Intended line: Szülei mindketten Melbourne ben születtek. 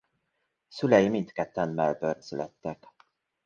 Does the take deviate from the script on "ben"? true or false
true